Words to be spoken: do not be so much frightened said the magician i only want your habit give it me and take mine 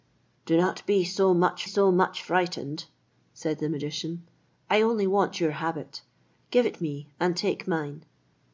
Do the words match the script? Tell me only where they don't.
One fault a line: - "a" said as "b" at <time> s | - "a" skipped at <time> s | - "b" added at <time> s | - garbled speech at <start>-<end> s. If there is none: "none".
- "so much" added at 1.6 s